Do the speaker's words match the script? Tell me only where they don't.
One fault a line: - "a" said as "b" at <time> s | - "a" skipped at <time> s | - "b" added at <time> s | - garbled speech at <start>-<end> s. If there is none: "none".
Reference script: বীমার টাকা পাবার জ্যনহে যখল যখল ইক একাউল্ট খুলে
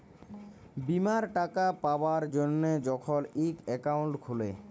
- "যখল" skipped at 3.2 s